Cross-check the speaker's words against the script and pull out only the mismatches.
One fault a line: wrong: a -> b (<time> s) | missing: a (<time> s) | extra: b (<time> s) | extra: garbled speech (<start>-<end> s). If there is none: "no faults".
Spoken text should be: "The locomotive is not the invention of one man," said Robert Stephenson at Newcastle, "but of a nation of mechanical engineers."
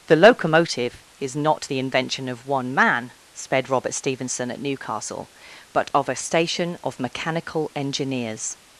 wrong: said -> sped (3.3 s)
wrong: nation -> station (6.2 s)